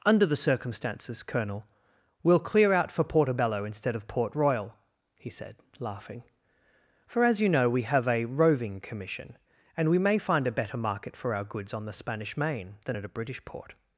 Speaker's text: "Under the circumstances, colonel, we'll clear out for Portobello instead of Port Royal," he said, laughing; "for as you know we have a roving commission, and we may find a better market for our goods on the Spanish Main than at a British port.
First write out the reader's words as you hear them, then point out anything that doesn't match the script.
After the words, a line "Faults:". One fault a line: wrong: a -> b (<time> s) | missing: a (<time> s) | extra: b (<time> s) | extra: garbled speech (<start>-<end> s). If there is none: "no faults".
"Under the circumstances, colonel, we'll clear out for Portobello instead of Port Royal," he said, laughing; "for as you know we have a roving commission, and we may find a better market for our goods on the Spanish Main than at a British port.
Faults:
no faults